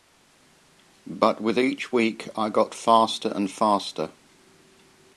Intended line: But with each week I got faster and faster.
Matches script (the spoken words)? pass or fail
pass